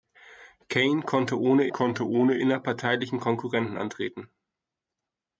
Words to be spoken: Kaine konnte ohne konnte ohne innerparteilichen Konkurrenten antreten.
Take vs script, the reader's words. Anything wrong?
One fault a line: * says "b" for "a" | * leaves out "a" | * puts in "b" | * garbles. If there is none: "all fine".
all fine